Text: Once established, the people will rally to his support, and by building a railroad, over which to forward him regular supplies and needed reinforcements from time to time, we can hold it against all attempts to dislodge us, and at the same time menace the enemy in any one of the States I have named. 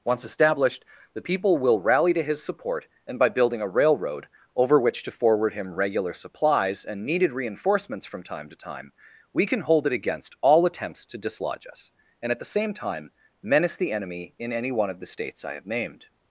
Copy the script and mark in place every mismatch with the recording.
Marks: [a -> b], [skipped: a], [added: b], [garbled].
Once established, the people will rally to his support, and by building a railroad, over which to forward him regular supplies and needed reinforcements from time to time, we can hold it against all attempts to dislodge us, and at the same time menace the enemy in any one of the States I have named.